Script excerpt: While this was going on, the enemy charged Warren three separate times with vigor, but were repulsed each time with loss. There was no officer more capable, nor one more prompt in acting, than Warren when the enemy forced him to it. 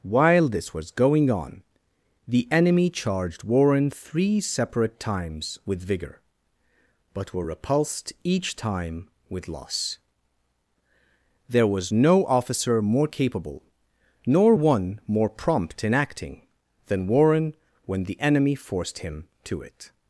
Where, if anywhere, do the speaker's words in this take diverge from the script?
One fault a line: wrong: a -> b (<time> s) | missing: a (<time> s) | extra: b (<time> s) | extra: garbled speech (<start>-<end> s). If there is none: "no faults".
no faults